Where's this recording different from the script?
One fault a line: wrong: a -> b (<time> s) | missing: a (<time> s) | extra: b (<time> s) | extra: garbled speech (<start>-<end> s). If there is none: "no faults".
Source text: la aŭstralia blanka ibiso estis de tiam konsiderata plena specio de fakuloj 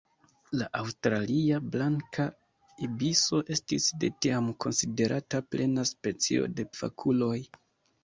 no faults